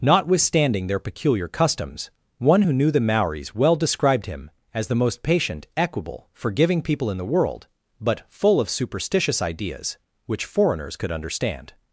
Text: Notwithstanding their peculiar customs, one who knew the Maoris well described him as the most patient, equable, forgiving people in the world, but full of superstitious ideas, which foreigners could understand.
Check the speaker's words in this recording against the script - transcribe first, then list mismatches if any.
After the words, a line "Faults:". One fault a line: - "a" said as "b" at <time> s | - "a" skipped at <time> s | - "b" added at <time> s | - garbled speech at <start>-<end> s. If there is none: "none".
Notwithstanding their peculiar customs, one who knew the Maoris well described him as the most patient, equable, forgiving people in the world, but full of superstitious ideas, which foreigners could understand.
Faults:
none